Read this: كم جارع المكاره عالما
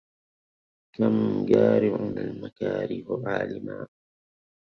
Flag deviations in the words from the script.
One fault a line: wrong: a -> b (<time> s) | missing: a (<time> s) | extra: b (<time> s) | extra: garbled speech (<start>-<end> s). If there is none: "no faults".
no faults